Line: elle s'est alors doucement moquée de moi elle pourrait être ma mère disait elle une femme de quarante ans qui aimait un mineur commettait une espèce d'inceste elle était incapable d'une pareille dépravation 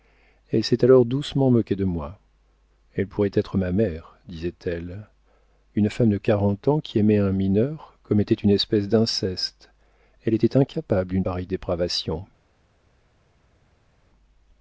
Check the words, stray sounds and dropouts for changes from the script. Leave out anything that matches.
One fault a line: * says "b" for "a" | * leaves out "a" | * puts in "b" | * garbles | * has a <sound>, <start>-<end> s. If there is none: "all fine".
all fine